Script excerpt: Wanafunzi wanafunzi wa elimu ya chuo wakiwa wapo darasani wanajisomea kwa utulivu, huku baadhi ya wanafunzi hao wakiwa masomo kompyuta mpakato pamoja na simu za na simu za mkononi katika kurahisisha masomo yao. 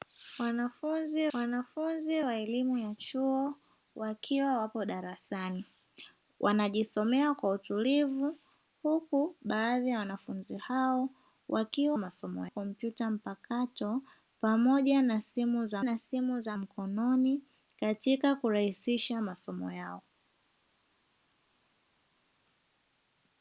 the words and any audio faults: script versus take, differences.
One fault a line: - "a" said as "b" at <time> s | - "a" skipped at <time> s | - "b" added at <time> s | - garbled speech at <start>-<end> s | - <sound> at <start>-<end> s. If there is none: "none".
none